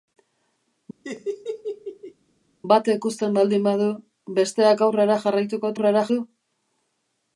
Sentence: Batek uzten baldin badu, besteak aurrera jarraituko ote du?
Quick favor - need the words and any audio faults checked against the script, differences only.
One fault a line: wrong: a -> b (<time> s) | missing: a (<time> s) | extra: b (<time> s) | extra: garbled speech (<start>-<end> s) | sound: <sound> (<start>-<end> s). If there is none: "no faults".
sound: laugh (1.0-2.1 s)
wrong: ote -> aurrera (5.7 s)